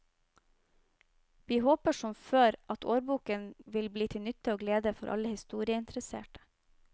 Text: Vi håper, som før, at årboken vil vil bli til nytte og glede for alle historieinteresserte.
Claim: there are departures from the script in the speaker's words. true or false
true